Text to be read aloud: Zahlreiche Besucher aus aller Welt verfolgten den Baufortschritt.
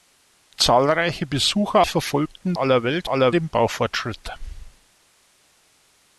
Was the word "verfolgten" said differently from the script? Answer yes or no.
yes